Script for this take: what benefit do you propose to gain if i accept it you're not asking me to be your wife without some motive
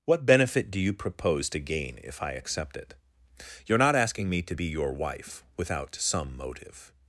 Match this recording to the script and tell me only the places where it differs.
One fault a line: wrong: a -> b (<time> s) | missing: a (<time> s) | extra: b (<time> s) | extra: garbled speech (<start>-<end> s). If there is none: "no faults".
no faults